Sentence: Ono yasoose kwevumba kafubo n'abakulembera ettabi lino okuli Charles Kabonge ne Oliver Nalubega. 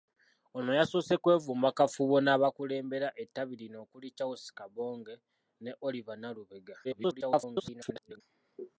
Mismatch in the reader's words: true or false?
true